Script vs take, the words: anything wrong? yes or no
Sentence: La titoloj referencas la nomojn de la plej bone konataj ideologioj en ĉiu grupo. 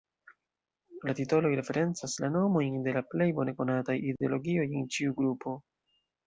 no